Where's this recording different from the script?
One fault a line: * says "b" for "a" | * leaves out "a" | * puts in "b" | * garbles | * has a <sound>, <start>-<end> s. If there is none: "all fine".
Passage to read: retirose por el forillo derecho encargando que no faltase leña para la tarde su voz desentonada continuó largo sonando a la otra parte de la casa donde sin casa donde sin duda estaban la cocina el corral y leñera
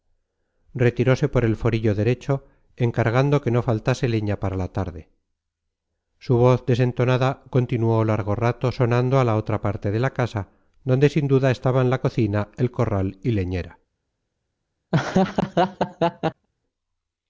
* puts in "rato"
* leaves out "casa donde sin"
* has a laugh, 14.9-16.5 s